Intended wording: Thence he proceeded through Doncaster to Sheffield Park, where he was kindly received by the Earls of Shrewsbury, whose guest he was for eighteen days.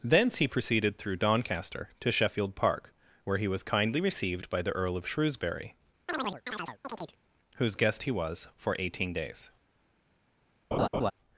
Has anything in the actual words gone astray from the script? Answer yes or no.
yes